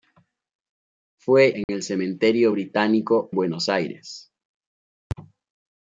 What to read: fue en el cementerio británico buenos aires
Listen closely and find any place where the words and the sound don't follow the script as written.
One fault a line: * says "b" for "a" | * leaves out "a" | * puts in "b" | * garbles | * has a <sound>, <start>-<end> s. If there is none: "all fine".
* has a dropout, 1.6-1.7 s